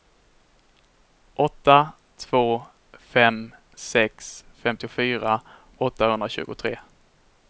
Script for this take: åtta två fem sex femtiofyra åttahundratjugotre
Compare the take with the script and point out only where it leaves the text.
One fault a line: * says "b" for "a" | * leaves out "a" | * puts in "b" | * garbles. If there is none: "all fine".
all fine